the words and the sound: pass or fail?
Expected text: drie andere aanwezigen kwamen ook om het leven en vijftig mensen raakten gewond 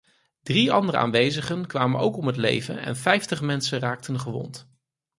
pass